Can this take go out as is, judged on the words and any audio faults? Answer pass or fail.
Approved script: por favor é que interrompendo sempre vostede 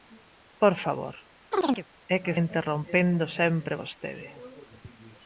fail